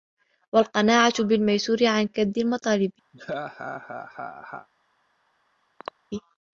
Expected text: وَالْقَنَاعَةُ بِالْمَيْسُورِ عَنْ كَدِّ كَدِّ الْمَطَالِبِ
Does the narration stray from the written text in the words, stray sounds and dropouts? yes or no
yes